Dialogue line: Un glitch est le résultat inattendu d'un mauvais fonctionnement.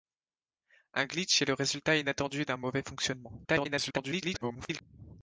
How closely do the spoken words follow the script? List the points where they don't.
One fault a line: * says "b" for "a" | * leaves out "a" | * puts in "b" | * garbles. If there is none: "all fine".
* garbles